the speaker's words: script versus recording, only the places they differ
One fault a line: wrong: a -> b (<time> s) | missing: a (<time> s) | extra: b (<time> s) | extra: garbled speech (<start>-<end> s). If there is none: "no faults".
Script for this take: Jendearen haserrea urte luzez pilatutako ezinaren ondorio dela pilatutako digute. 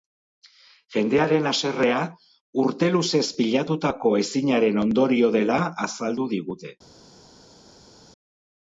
wrong: pilatutako -> azaldu (5.9 s)